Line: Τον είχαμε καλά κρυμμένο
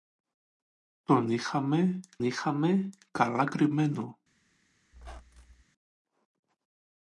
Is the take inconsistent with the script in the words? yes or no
yes